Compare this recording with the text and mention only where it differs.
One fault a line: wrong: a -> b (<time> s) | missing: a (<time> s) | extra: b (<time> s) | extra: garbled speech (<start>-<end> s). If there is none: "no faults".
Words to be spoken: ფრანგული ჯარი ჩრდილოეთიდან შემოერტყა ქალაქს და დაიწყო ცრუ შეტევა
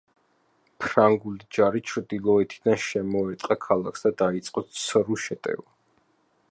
no faults